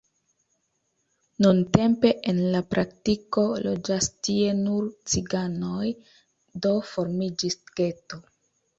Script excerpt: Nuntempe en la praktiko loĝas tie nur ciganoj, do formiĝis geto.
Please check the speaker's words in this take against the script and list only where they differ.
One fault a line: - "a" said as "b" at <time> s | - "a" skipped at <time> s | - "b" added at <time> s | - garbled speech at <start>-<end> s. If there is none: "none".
none